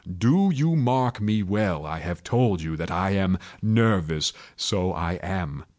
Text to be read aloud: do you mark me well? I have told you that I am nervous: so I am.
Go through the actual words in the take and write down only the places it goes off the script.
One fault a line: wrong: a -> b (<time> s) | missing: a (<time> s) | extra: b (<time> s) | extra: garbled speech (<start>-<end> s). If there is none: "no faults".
no faults